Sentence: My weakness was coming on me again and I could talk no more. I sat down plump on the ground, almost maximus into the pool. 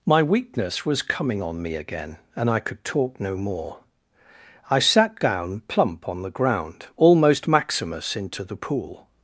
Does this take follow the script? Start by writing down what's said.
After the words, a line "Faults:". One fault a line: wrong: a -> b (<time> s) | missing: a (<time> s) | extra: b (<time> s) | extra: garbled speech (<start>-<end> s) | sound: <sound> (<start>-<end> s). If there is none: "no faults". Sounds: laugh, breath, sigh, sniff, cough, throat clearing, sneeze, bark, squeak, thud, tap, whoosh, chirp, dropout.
My weakness was coming on me again and I could talk no more. I sat down plump on the ground, almost maximus into the pool.
Faults:
no faults